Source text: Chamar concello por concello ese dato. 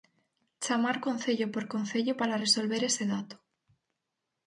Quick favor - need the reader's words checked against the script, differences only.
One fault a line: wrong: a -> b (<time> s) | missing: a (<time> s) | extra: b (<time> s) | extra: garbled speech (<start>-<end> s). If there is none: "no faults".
extra: para resolver (2.2 s)